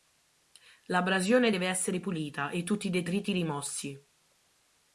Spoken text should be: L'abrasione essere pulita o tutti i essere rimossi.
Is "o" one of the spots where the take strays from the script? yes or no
yes